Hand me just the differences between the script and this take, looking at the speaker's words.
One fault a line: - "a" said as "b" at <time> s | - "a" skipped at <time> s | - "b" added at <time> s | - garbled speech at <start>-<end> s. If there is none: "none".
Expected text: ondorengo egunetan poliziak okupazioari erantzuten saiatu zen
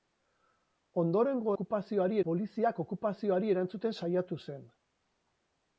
- "egunetan" said as "okupazioari" at 1.5 s